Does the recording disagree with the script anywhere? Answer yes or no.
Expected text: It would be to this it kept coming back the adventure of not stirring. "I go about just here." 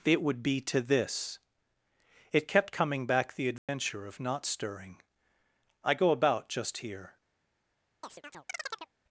no